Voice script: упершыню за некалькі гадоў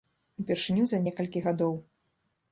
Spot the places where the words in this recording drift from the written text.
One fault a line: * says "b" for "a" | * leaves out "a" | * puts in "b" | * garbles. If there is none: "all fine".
all fine